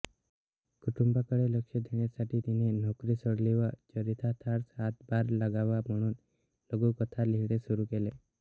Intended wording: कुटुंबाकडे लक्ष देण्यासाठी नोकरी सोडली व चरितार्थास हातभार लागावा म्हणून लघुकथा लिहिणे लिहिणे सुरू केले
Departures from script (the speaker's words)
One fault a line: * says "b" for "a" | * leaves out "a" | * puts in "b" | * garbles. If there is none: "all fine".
* puts in "तिने"
* leaves out "लिहिणे"